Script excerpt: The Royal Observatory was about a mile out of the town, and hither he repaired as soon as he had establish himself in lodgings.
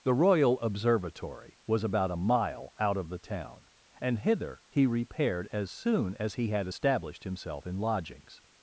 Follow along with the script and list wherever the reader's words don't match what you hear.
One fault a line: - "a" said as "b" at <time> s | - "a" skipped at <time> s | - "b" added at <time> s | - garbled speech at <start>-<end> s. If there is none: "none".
- "establish" said as "established" at 6.7 s